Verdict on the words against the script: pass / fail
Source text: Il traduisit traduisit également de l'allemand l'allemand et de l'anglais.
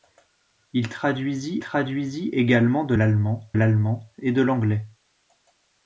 pass